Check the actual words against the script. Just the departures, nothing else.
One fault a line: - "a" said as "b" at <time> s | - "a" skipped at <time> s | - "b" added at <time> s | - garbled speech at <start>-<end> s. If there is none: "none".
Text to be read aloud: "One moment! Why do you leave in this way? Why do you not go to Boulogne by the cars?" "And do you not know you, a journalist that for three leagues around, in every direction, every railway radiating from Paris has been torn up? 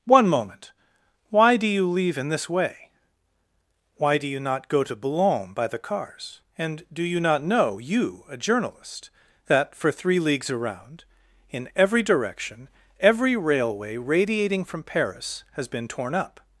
none